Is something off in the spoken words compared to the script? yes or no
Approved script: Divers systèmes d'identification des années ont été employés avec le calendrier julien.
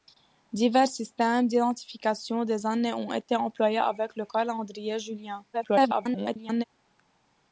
yes